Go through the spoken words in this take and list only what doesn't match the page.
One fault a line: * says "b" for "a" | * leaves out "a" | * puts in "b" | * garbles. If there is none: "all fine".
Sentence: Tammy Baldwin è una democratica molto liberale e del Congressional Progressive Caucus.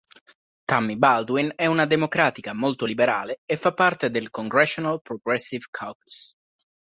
* puts in "fa parte"